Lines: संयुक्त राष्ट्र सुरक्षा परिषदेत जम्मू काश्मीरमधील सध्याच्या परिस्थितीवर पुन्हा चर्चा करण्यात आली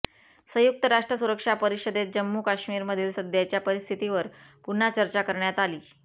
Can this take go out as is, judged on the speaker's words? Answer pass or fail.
pass